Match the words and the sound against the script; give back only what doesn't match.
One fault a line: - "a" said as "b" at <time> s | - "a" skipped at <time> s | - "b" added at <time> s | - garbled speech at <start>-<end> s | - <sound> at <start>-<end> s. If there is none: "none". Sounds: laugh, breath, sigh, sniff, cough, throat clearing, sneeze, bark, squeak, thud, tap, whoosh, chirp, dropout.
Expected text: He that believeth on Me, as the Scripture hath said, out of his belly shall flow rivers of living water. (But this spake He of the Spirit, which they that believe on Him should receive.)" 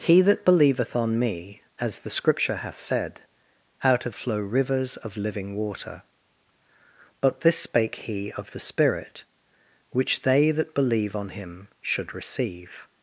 - "his belly shall" skipped at 4.2 s